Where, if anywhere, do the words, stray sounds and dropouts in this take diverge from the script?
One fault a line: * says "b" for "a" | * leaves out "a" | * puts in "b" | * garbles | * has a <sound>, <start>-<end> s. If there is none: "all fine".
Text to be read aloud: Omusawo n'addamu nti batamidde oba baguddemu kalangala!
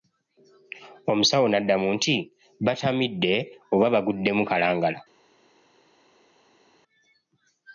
all fine